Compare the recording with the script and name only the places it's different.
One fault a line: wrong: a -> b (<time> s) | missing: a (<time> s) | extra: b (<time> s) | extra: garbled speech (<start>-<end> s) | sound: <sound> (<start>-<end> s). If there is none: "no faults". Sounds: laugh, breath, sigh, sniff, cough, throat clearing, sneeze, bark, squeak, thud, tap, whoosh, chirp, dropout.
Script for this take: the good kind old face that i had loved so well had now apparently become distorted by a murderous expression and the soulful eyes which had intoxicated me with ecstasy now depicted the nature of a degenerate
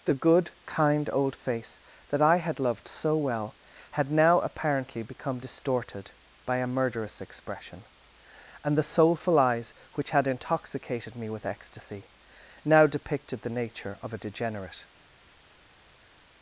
no faults